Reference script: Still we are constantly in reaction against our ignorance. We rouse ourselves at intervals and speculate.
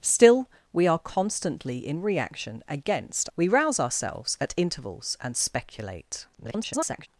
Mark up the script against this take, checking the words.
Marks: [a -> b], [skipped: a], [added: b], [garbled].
Still we are constantly in reaction against [skipped: our ignorance.] We rouse ourselves at intervals and speculate. [garbled]